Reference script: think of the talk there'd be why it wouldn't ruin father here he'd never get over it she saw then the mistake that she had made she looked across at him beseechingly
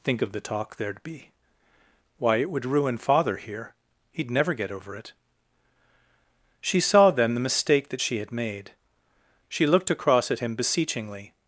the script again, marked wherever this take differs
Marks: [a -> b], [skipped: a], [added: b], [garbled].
think of the talk there'd be why it [wouldn't -> would] ruin father here he'd never get over it she saw then the mistake that she had made she looked across at him beseechingly